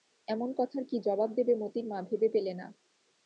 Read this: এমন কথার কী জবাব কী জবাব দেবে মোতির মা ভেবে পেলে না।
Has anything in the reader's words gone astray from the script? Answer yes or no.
yes